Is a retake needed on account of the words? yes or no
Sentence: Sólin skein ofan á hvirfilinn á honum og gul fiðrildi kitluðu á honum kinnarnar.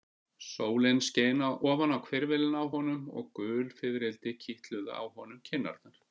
no